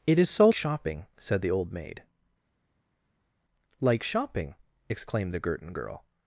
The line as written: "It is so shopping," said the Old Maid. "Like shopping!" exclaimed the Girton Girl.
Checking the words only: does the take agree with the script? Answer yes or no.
yes